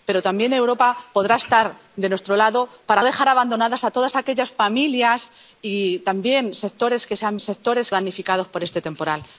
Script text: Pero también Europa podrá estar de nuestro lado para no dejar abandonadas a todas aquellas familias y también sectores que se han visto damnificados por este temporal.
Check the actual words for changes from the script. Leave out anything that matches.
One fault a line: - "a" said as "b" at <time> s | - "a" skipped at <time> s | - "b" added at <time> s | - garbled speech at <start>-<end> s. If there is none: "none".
- "no" skipped at 3.0 s
- "visto" said as "sectores" at 7.4 s